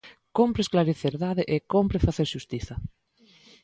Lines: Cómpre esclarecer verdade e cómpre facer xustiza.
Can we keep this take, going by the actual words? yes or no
yes